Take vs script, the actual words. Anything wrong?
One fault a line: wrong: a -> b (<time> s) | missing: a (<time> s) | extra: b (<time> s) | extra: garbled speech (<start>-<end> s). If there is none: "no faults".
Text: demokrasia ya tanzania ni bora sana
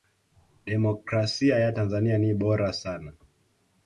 no faults